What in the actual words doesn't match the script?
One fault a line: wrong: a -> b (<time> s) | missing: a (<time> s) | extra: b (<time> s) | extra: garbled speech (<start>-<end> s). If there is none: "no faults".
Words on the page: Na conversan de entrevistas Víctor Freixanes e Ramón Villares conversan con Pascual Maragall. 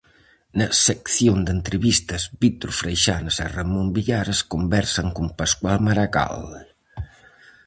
wrong: conversan -> sección (0.9 s)